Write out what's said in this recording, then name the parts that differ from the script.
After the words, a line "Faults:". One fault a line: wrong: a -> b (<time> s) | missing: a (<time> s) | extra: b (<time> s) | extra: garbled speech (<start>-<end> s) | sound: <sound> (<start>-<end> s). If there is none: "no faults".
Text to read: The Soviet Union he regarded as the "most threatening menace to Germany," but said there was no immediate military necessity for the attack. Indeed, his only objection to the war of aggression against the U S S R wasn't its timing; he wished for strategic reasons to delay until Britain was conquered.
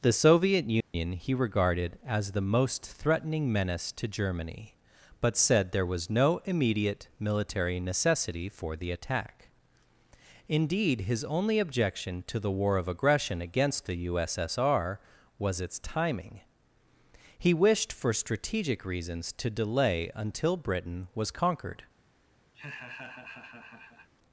The Soviet Union he regarded as the "most threatening menace to Germany," but said there was no immediate military necessity for the attack. Indeed, his only objection to the war of aggression against the U S S R was its timing; he wished for strategic reasons to delay until Britain was conquered.
Faults:
sound: dropout (0.8-0.9 s)
wrong: wasn't -> was (15.4 s)
sound: laugh (22.5-24.1 s)